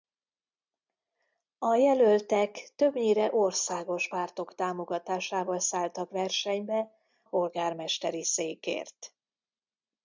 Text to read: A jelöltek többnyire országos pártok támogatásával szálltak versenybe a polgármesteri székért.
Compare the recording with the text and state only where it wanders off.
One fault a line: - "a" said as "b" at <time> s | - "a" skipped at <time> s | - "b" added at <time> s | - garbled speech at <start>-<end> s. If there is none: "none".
- "a" skipped at 6.9 s